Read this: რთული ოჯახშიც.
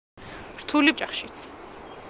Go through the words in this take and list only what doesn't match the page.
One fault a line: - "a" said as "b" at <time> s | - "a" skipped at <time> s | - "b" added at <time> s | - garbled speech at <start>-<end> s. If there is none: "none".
none